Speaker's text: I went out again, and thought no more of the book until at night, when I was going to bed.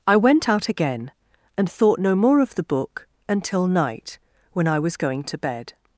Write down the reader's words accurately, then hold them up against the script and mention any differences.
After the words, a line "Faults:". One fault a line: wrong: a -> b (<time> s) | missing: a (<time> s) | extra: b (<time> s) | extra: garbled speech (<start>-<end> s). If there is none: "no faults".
I went out again, and thought no more of the book until night, when I was going to bed.
Faults:
missing: at (3.7 s)